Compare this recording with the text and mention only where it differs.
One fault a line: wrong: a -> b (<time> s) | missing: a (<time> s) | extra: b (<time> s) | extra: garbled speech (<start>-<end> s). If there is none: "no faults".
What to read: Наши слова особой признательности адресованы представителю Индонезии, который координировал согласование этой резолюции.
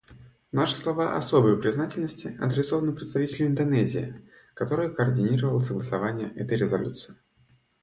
no faults